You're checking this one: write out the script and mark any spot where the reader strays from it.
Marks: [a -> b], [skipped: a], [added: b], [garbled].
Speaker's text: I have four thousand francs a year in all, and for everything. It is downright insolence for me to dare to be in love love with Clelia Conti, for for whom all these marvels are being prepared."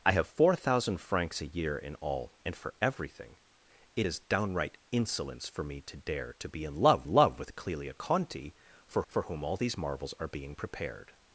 I have four thousand francs a year in all, and for everything. It is downright insolence for me to dare to be in love love with Clelia Conti, for for whom all these marvels are being prepared."